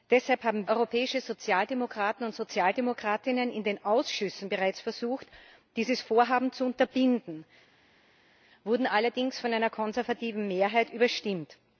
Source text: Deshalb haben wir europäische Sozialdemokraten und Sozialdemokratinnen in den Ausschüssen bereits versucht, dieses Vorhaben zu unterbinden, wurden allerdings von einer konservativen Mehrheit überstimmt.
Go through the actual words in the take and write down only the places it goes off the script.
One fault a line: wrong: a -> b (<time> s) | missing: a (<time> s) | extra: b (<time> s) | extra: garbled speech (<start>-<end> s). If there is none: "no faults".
missing: wir (0.7 s)